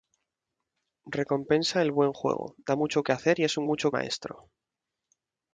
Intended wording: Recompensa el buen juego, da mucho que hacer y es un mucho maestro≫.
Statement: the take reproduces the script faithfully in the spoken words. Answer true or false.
true